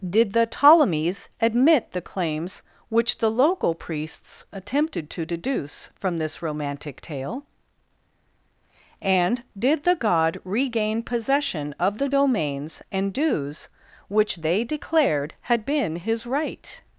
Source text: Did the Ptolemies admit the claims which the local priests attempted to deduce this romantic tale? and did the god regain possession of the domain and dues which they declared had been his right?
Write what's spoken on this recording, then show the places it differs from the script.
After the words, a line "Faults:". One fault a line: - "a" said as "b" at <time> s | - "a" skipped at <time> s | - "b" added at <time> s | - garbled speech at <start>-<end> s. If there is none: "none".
Did the Ptolemies admit the claims which the local priests attempted to deduce from this romantic tale? and did the god regain possession of the domains and dues which they declared had been his right?
Faults:
- "from" added at 6.0 s
- "domain" said as "domains" at 12.1 s